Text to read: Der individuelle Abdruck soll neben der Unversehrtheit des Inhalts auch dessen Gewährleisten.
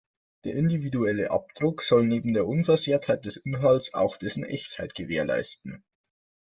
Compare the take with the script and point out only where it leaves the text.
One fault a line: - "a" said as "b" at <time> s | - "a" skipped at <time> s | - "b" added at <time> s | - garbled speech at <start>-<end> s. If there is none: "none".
- "Echtheit" added at 4.4 s